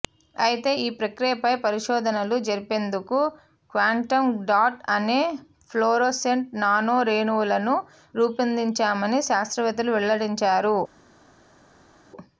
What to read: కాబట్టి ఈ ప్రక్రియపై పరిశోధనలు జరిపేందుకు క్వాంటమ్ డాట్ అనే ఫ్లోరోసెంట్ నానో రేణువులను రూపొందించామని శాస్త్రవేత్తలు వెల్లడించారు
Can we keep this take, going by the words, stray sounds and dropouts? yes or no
no